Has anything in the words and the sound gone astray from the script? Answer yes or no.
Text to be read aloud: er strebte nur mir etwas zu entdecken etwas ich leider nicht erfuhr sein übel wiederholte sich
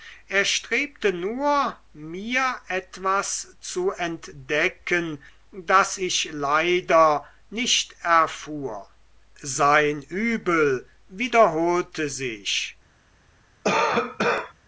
yes